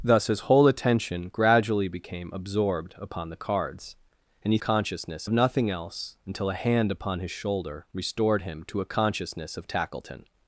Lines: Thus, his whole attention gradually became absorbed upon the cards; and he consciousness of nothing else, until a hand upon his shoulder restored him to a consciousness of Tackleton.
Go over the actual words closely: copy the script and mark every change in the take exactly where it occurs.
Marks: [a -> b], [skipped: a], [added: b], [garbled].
Thus, his whole attention gradually became absorbed upon the cards; and he consciousness of nothing else, until a hand upon his shoulder restored him to a consciousness of Tackleton.